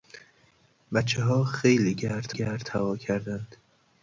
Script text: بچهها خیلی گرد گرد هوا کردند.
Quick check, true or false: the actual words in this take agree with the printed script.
true